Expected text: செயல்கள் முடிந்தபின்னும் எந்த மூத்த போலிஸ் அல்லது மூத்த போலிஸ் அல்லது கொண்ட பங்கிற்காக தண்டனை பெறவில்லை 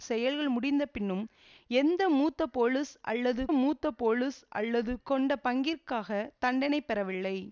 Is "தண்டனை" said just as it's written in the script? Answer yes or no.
yes